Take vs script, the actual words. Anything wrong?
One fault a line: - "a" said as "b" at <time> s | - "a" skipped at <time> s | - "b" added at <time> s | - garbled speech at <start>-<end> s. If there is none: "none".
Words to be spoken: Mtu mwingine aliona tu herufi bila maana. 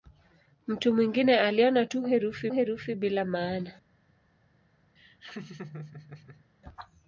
- "herufi" added at 2.5 s